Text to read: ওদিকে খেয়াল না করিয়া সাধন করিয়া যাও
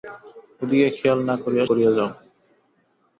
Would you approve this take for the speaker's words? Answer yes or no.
no